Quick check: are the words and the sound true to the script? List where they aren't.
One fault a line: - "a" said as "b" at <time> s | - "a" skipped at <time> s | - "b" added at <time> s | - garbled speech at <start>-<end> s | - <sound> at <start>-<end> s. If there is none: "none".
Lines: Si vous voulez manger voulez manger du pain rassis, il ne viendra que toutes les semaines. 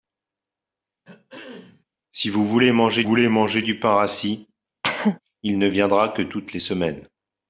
- throat clearing at 1.0-1.8 s
- cough at 4.8-5.2 s